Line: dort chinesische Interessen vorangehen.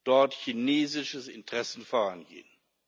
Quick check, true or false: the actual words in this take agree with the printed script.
true